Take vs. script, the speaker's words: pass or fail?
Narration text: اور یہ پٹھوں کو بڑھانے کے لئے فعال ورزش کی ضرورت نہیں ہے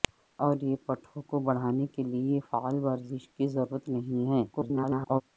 fail